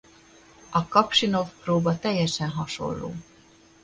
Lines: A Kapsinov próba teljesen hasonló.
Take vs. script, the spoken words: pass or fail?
pass